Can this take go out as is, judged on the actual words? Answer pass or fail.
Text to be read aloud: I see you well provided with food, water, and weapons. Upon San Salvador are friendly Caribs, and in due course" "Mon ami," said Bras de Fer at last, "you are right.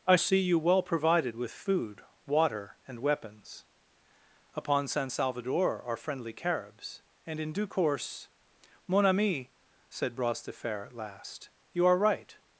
pass